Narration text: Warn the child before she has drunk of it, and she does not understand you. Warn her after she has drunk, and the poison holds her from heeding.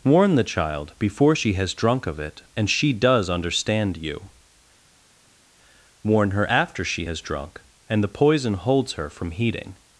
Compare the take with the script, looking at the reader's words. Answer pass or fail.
fail